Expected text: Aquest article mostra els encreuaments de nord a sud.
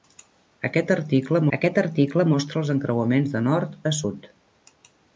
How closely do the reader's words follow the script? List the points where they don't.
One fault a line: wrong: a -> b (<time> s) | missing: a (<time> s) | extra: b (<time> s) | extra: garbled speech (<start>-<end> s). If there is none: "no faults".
extra: aquest article (1.6 s)